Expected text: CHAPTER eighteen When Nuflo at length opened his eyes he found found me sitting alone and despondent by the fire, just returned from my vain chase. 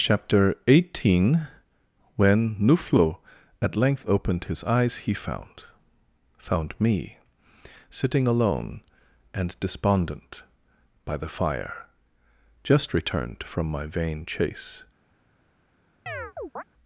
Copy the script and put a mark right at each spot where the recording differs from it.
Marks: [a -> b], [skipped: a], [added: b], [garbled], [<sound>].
CHAPTER eighteen When Nuflo at length opened his eyes he found found me sitting alone and despondent by the fire, just returned from my vain chase. [chirp]